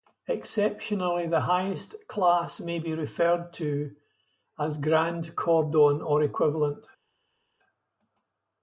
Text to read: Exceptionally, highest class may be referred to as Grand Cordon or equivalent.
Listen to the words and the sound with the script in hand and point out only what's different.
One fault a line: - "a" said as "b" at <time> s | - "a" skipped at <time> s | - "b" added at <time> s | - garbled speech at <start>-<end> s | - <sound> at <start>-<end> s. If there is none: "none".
- "the" added at 1.3 s